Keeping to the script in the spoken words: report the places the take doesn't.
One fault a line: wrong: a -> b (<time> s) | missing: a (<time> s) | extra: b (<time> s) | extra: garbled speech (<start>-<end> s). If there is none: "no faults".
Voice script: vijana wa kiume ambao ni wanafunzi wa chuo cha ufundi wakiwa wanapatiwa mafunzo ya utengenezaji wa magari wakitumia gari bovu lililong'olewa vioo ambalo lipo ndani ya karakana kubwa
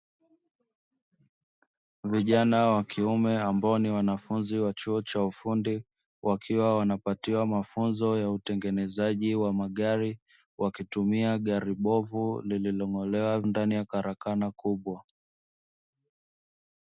missing: vioo ambalo lipo (13.4 s)